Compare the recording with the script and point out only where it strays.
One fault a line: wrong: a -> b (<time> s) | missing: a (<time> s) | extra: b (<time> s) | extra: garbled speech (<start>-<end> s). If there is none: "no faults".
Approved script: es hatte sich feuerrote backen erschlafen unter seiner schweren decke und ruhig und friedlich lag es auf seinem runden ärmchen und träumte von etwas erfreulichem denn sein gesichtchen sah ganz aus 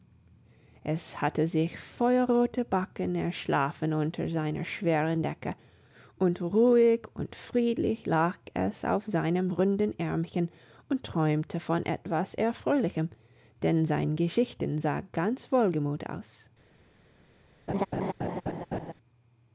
extra: wohlgemut (15.5 s)